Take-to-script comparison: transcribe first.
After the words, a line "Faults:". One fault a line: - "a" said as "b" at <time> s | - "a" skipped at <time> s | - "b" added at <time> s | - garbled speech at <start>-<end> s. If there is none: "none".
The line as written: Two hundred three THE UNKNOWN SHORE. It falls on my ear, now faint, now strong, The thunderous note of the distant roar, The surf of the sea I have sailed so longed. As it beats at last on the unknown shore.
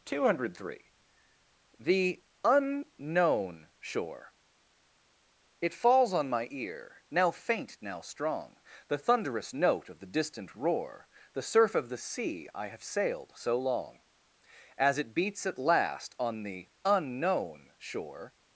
Two hundred three THE UNKNOWN SHORE. It falls on my ear, now faint, now strong, The thunderous note of the distant roar, The surf of the sea I have sailed so long. As it beats at last on the unknown shore.
Faults:
- "longed" said as "long" at 13.6 s